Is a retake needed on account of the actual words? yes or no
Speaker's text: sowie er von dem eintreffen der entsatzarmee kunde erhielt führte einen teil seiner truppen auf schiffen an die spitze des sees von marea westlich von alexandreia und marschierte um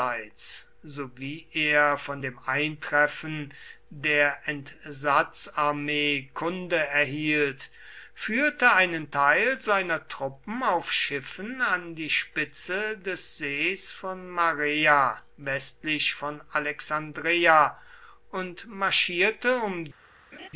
no